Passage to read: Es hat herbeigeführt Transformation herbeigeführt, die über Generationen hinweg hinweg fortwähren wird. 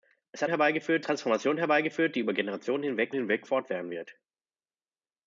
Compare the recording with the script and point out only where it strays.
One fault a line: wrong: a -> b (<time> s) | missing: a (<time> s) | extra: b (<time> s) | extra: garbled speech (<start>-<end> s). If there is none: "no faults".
no faults